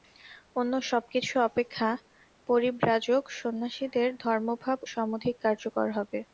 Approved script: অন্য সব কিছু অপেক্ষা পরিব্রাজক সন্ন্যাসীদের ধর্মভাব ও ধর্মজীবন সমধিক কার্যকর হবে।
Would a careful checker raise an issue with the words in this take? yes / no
yes